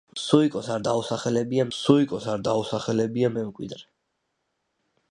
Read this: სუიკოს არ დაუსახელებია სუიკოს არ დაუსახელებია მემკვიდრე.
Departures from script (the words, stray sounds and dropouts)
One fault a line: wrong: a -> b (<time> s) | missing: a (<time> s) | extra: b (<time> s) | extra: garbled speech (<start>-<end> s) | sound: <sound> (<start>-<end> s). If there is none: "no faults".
no faults